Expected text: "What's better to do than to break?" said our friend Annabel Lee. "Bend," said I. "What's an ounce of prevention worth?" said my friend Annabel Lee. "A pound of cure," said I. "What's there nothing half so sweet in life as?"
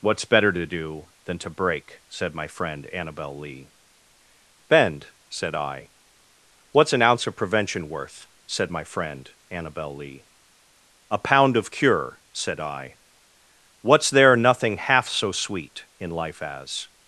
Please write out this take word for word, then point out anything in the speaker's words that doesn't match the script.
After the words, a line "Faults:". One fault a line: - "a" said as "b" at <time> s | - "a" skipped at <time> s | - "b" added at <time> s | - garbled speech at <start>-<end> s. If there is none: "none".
"What's better to do than to break?" said my friend Annabel Lee. "Bend," said I. "What's an ounce of prevention worth?" said my friend Annabel Lee. "A pound of cure," said I. "What's there nothing half so sweet in life as?"
Faults:
- "our" said as "my" at 2.4 s